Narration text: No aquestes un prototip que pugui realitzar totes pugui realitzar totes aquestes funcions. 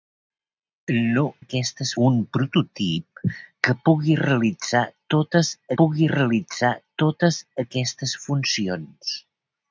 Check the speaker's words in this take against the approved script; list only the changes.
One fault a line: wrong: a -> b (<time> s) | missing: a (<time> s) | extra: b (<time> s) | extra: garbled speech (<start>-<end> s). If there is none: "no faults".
no faults